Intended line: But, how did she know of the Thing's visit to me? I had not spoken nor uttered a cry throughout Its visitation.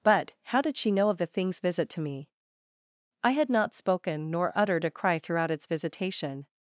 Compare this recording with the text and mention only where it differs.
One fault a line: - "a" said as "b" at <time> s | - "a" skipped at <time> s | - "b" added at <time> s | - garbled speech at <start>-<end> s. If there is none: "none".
none